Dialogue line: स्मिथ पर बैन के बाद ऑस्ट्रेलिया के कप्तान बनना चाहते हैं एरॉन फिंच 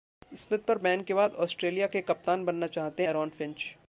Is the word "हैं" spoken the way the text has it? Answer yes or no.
no